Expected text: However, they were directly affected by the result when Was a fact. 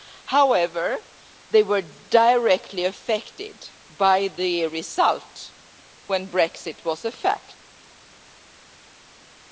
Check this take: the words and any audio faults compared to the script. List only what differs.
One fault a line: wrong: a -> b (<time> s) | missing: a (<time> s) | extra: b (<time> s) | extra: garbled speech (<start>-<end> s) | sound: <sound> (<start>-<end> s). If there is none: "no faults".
extra: Brexit (6.3 s)